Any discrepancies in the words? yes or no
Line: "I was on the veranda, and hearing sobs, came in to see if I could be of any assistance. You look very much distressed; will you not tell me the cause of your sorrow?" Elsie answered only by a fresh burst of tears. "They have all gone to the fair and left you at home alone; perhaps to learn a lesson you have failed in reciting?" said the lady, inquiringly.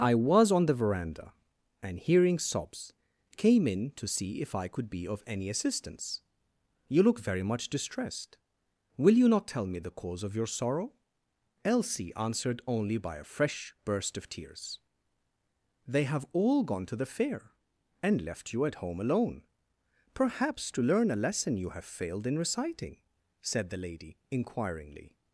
no